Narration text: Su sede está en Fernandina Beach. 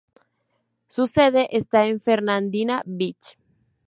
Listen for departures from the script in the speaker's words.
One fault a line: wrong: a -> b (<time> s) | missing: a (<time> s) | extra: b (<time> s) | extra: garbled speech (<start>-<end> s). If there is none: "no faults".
no faults